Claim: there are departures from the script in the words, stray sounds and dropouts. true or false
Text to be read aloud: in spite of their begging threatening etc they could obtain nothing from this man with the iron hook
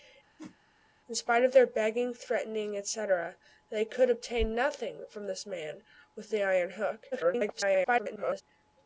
true